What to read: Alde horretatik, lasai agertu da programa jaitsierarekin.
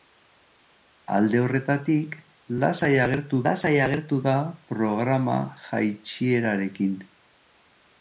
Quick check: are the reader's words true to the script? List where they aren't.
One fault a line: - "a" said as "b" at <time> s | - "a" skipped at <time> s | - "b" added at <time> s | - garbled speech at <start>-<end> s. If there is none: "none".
- "lasai agertu" added at 3.5 s